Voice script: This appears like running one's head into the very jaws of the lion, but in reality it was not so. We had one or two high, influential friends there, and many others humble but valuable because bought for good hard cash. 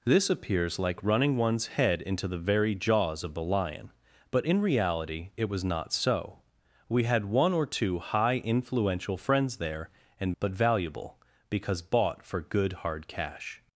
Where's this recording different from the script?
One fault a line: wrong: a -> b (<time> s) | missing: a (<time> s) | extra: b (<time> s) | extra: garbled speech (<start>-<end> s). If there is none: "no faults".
missing: many others humble (10.3 s)